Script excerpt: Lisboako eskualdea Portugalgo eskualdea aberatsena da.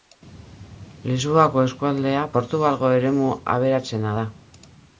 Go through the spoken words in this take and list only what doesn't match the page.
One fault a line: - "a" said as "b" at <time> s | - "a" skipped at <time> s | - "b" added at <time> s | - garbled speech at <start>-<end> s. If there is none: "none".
- "eskualdea" said as "eremu" at 3.0 s